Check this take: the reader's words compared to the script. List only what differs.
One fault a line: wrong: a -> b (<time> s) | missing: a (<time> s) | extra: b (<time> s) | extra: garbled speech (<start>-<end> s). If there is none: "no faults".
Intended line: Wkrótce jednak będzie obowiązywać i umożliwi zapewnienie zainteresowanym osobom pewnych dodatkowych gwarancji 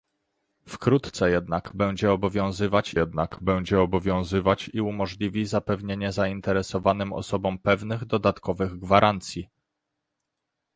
extra: jednak będzie obowiązywać (3.0 s)